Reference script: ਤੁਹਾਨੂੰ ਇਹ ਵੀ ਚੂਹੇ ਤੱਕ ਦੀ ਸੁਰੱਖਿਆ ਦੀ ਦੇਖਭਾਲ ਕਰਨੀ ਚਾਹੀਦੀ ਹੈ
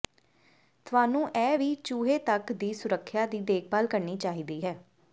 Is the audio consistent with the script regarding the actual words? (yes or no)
yes